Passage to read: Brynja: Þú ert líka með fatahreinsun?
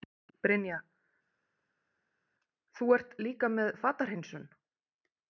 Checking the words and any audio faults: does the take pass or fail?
pass